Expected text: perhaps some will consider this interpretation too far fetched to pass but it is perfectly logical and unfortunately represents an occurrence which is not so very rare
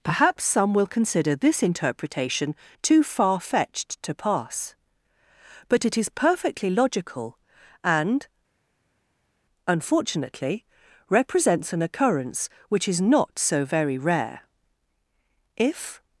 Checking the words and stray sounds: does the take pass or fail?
fail